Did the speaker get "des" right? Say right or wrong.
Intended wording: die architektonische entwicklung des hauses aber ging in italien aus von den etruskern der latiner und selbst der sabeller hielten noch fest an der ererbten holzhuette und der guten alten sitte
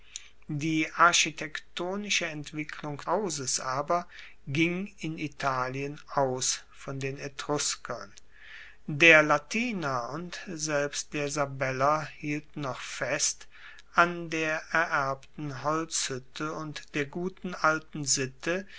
wrong